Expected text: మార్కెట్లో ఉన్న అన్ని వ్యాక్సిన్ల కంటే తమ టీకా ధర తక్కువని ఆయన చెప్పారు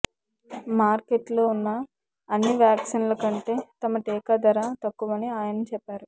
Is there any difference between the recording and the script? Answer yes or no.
no